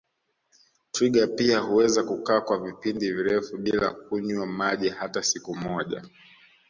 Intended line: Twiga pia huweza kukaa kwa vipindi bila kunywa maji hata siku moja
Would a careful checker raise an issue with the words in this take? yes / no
yes